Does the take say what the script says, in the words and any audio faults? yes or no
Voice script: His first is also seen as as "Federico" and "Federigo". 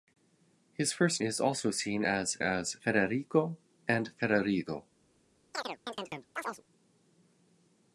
no